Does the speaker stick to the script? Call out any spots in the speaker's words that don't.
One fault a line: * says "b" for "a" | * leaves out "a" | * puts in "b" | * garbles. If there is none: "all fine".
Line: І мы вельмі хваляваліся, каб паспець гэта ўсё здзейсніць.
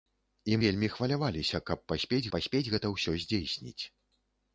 * leaves out "мы"
* puts in "паспець"